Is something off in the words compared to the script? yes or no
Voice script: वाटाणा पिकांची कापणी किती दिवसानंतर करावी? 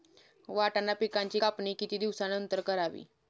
no